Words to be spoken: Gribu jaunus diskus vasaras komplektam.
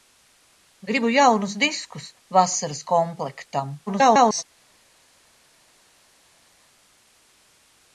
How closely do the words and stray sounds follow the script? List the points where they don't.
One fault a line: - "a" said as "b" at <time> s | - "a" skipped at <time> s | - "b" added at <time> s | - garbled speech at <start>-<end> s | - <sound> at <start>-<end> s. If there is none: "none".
- garbled speech at 3.9-4.4 s